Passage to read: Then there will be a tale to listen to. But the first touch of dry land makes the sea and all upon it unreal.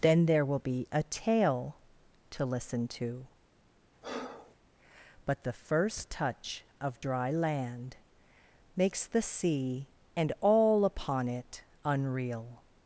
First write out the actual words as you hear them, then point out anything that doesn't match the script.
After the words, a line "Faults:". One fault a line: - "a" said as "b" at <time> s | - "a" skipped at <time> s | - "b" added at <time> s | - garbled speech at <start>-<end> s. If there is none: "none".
Then there will be a tale to listen to. But the first touch of dry land makes the sea and all upon it unreal.
Faults:
none